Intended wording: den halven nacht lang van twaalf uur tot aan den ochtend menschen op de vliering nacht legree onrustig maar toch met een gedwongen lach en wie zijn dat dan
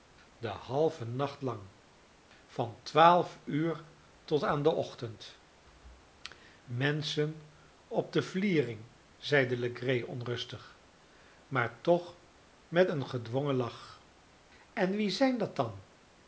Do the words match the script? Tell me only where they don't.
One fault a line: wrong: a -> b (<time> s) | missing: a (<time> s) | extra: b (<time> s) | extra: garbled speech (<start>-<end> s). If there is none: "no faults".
wrong: nacht -> zeide (9.2 s)